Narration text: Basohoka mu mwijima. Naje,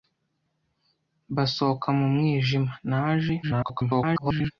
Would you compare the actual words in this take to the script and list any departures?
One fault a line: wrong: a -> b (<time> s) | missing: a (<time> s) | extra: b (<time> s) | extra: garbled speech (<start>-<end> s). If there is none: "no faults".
extra: garbled speech (3.4-4.5 s)